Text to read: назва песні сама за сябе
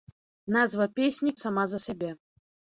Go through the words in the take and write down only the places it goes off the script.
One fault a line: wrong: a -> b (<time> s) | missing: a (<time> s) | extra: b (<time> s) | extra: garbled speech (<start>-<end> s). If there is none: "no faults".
no faults